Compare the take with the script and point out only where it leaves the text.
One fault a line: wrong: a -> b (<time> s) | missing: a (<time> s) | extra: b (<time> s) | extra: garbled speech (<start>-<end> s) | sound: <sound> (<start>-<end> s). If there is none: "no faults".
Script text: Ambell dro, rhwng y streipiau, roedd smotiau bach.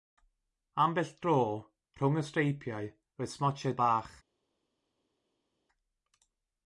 no faults